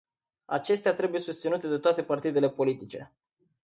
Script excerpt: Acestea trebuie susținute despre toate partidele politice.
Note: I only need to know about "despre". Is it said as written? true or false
false